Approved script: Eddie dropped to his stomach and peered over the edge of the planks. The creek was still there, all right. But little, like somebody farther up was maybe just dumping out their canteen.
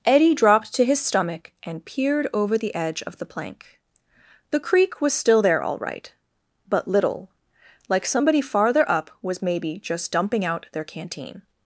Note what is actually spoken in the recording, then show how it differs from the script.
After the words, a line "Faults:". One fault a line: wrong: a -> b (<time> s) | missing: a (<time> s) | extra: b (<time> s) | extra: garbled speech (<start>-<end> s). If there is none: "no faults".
Eddie dropped to his stomach and peered over the edge of the plank. The creek was still there, all right. But little, like somebody farther up was maybe just dumping out their canteen.
Faults:
wrong: planks -> plank (3.2 s)